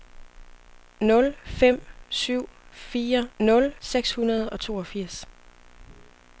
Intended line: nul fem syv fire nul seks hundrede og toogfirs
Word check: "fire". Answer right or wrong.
right